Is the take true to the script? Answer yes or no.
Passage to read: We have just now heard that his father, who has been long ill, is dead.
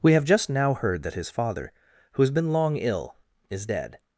yes